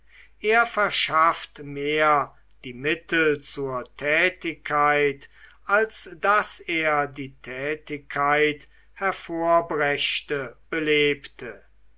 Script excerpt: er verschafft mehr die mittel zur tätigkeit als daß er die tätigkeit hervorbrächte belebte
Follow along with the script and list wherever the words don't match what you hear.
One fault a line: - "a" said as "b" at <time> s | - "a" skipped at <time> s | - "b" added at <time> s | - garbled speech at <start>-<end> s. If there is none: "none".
none